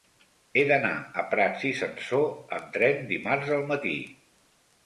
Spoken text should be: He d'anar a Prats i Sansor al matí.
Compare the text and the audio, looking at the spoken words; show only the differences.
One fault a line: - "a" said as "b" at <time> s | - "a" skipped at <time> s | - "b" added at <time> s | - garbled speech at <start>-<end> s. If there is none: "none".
- "amb tren dimarts" added at 2.6 s